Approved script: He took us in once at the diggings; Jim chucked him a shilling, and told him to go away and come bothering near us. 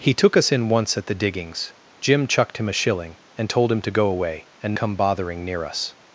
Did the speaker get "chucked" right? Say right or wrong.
right